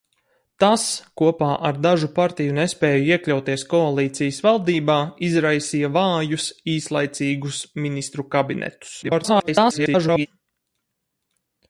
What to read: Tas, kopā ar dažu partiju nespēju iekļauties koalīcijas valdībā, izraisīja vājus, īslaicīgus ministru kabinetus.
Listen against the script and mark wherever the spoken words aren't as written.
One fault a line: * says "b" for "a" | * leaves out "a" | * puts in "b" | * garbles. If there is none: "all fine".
* garbles